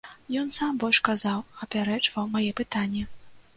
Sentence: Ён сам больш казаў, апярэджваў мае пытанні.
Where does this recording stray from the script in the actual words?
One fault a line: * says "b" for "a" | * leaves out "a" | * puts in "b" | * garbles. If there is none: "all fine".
all fine